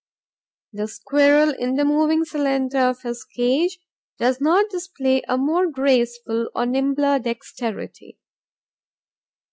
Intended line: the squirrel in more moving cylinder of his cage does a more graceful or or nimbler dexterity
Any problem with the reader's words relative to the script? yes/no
yes